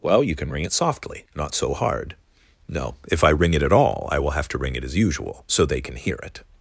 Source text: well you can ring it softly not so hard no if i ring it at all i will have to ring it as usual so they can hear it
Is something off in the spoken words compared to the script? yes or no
no